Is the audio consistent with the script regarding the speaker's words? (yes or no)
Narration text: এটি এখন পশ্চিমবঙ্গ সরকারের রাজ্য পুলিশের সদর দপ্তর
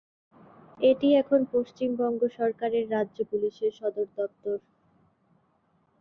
yes